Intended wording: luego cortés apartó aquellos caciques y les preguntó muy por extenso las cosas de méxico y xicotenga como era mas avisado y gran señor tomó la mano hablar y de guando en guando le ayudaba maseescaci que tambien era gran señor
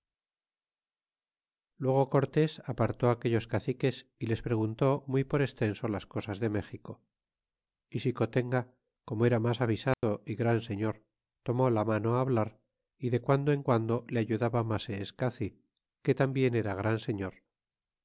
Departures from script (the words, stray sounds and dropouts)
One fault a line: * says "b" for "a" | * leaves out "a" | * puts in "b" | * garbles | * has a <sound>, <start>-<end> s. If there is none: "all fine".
* has a dropout, 9.9-10.0 s